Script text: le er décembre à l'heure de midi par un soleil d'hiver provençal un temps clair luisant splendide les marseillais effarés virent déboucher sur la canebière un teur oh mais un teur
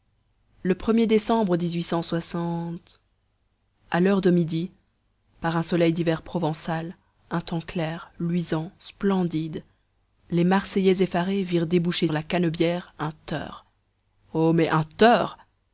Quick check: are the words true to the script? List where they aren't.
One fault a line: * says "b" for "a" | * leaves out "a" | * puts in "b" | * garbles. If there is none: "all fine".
* leaves out "sur"